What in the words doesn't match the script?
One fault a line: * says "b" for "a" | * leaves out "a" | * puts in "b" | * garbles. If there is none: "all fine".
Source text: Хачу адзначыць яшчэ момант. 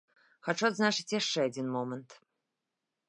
* puts in "адзін"